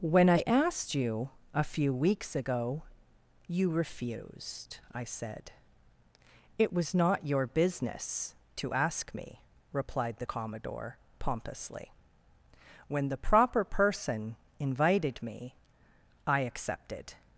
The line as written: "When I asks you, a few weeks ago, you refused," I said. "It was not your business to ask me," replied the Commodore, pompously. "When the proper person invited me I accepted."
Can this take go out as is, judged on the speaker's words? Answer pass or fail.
fail